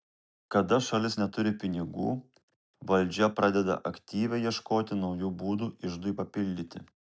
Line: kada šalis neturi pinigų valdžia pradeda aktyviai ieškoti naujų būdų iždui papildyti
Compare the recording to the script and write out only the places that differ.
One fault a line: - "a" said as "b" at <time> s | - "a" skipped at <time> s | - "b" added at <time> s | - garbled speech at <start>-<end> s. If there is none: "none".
none